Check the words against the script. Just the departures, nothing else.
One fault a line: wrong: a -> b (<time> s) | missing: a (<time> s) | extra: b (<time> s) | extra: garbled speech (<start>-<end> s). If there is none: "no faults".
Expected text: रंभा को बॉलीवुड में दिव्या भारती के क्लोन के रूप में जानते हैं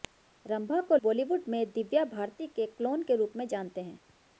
no faults